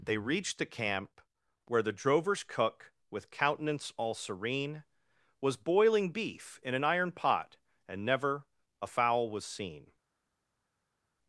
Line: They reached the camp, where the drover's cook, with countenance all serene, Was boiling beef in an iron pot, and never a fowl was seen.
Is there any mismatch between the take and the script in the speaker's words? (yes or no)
no